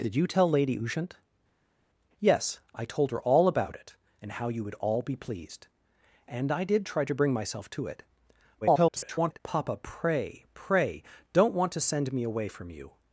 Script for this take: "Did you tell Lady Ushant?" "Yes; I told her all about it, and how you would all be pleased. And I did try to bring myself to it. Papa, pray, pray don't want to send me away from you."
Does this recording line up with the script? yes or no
no